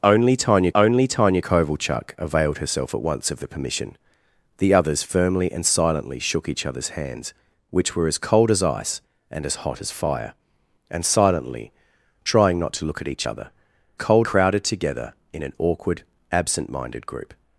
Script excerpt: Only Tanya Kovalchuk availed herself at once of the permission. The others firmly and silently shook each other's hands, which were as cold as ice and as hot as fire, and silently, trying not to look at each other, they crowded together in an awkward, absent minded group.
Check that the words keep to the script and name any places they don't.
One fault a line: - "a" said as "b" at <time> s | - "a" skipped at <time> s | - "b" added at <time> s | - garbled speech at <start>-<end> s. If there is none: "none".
- "only Tanya" added at 0.7 s
- "they" said as "cold" at 13.9 s